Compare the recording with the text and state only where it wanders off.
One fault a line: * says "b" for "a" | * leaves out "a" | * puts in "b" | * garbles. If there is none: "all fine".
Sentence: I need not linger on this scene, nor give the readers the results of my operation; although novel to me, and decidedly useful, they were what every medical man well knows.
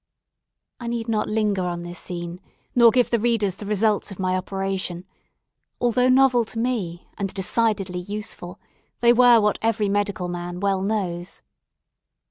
all fine